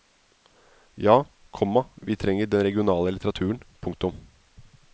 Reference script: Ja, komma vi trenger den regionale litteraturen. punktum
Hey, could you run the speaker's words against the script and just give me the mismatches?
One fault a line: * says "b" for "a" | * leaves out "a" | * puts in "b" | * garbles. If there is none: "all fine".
all fine